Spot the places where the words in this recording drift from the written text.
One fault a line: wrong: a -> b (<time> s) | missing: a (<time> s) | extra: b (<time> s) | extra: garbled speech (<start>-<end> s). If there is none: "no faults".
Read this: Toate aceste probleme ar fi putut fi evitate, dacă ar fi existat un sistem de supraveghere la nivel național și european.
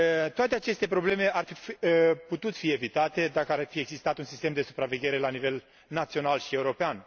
no faults